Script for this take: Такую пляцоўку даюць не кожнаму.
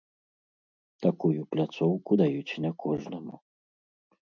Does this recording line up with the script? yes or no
yes